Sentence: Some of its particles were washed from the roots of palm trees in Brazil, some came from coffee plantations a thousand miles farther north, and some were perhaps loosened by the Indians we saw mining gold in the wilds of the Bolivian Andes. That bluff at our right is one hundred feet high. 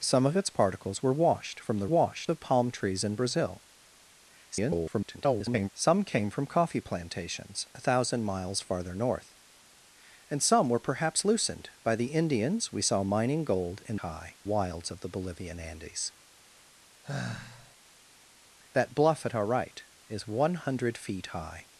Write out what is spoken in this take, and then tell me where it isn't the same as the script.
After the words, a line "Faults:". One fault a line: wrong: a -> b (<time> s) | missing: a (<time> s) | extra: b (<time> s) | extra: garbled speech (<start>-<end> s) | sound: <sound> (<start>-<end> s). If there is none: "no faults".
Some of its particles were washed from the washed of palm trees in Brazil, [garbled] some came from coffee plantations a thousand miles farther north, and some were perhaps loosened by the Indians we saw mining gold in high wilds of the Bolivian Andes. That bluff at our right is one hundred feet high.
Faults:
wrong: roots -> washed (1.9 s)
extra: garbled speech (4.5-5.7 s)
wrong: the -> high (14.0 s)
sound: sigh (17.0-17.7 s)